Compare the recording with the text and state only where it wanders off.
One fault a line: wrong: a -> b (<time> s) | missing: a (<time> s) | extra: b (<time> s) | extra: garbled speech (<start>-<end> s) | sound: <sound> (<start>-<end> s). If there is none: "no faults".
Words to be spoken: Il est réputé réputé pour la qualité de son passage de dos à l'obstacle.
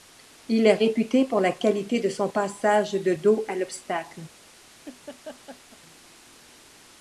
missing: réputé (1.2 s)
sound: laugh (4.8-5.8 s)